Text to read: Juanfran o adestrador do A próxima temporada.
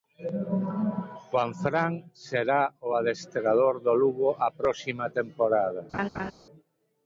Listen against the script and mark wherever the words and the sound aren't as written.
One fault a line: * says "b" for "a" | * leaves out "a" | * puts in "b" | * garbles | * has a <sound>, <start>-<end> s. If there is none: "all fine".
* puts in "será"
* puts in "Lugo"
* has a laugh, 5.9-6.3 s